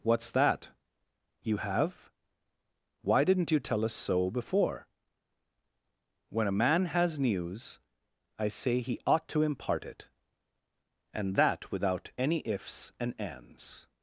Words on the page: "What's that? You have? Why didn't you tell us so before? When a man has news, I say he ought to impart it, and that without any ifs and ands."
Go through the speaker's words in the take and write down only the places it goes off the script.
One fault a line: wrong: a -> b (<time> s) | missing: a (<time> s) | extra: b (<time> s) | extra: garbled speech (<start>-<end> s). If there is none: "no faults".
no faults